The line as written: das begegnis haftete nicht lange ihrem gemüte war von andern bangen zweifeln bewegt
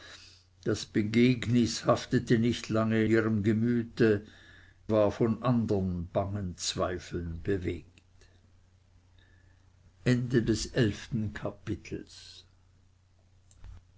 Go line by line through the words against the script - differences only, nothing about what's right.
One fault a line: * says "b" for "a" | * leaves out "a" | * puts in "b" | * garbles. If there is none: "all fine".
all fine